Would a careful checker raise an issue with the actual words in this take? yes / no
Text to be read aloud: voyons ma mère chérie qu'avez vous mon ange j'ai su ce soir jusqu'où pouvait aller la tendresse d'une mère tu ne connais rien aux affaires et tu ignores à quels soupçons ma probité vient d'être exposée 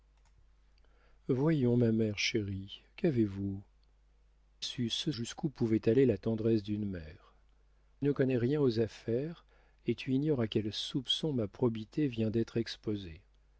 yes